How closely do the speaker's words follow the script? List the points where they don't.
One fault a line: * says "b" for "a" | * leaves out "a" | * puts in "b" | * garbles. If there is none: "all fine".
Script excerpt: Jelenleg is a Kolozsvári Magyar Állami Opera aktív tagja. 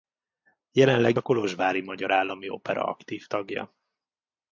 * leaves out "is"